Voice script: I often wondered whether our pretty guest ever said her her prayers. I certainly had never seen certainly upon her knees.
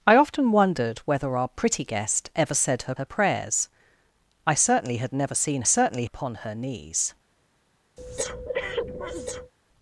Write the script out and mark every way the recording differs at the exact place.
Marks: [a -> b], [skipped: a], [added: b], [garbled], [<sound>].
I often wondered whether our pretty guest ever said her her prayers. I certainly had never seen certainly upon her knees. [breath]